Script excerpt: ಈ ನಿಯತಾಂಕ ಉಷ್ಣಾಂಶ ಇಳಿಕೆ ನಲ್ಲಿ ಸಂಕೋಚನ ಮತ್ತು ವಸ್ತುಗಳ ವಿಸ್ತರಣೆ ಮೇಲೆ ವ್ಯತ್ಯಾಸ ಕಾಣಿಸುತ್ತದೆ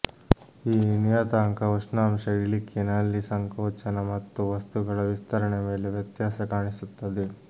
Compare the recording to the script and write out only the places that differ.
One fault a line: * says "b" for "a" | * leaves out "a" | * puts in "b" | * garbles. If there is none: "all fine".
all fine